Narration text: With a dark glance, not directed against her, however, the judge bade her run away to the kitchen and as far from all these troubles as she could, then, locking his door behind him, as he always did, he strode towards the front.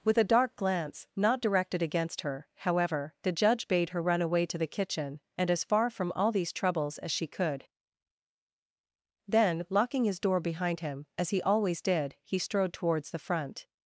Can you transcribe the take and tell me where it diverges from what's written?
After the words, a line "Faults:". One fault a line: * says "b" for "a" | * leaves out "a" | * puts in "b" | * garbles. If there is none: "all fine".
With a dark glance, not directed against her, however, the judge bade her run away to the kitchen and as far from all these troubles as she could, then, locking his door behind him, as he always did, he strode towards the front.
Faults:
all fine